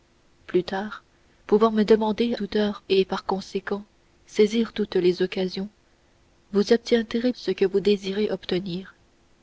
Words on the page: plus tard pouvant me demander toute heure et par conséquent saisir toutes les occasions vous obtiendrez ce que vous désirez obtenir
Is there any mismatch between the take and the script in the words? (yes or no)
no